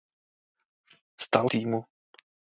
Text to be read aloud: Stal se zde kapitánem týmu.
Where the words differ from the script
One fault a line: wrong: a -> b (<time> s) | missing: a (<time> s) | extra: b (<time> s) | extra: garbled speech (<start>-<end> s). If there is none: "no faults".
missing: se zde kapitánem (1.5 s)